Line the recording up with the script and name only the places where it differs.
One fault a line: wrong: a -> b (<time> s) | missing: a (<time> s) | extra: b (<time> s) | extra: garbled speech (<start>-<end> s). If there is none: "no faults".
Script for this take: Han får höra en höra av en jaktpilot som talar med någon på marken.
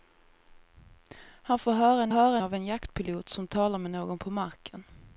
no faults